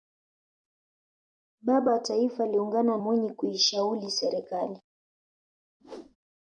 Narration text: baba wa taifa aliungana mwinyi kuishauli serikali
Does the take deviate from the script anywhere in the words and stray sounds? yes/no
yes